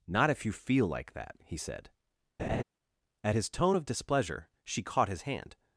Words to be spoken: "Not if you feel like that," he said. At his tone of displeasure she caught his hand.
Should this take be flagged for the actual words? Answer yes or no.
no